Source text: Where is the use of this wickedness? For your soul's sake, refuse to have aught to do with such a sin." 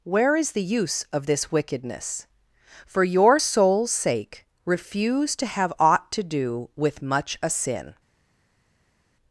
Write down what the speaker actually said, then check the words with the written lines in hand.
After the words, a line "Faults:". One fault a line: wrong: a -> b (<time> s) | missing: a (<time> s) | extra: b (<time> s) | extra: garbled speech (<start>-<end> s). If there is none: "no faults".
Where is the use of this wickedness? For your soul's sake, refuse to have aught to do with much a sin."
Faults:
wrong: such -> much (7.0 s)